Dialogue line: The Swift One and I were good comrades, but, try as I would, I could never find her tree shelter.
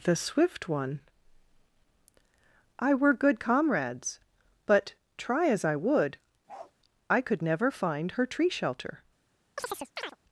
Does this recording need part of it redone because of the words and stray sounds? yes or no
yes